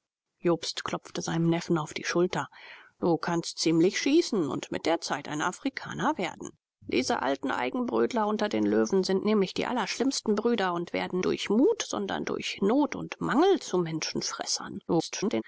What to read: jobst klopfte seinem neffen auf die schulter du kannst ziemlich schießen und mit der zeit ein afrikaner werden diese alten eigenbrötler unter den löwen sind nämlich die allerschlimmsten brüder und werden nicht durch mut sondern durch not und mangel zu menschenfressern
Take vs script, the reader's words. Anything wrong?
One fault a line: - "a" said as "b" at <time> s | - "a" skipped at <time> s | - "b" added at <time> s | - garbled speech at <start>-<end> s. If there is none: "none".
- "nicht" skipped at 11.2 s
- garbled speech at 14.9-15.4 s